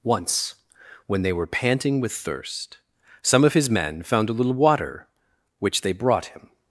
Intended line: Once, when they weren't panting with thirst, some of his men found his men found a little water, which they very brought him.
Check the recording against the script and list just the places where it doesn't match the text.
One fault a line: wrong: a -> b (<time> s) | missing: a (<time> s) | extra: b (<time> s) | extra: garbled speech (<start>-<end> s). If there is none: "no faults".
wrong: weren't -> were (1.3 s)
missing: his men found (4.3 s)
missing: very (5.9 s)